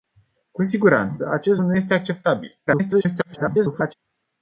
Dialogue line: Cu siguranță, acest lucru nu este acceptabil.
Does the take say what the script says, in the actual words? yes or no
no